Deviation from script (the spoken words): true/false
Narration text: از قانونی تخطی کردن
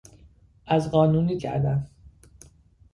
true